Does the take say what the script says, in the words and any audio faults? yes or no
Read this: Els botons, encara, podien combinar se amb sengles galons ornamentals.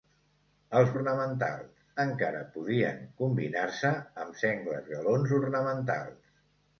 no